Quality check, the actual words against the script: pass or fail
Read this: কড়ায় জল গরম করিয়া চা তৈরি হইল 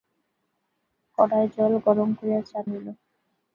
fail